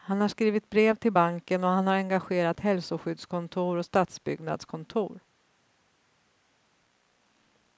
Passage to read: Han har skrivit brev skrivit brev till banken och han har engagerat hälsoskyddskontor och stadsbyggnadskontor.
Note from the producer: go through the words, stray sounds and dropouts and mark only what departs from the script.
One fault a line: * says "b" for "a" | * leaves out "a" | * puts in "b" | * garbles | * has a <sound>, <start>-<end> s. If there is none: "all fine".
* leaves out "skrivit brev"